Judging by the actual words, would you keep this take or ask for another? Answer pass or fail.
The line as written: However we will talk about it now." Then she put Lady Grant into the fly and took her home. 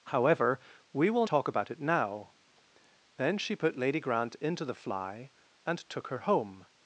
pass